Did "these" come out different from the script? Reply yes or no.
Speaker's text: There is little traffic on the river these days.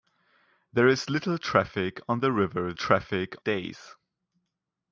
yes